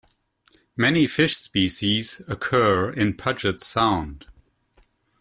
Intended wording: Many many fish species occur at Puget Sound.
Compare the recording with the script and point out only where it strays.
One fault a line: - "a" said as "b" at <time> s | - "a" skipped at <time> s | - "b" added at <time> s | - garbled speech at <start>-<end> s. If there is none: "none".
- "many" skipped at 1.1 s
- "at" said as "in" at 2.9 s